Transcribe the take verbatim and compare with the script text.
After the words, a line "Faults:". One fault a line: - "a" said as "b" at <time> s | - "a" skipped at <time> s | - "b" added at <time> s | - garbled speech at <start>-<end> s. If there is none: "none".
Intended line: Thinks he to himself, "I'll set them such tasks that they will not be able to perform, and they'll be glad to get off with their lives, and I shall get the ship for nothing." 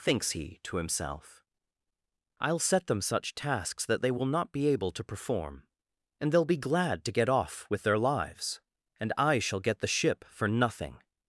Thinks he to himself, "I'll set them such tasks that they will not be able to perform, and they'll be glad to get off with their lives, and I shall get the ship for nothing."
Faults:
none